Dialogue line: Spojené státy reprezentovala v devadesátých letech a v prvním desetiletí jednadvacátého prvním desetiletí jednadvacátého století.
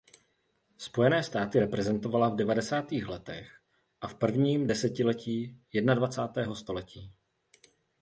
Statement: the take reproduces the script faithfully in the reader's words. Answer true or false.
false